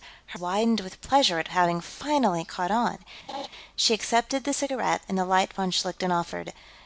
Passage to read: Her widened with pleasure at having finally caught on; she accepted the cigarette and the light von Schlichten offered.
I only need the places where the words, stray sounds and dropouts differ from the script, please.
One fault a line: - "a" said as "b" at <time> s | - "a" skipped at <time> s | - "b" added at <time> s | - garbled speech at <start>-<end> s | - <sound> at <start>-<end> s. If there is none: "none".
- laugh at 3.3-3.5 s